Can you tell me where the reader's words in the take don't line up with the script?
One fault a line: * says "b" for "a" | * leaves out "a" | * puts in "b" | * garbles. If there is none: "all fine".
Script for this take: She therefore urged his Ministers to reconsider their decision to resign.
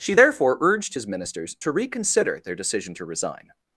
all fine